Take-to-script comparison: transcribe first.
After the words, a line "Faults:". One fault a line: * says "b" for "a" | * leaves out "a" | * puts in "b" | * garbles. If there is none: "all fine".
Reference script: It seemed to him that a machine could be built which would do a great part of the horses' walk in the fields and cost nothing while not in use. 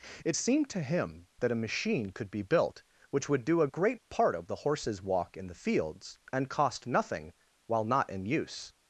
It seemed to him that a machine could be built which would do a great part of the horses' walk in the fields and cost nothing while not in use.
Faults:
all fine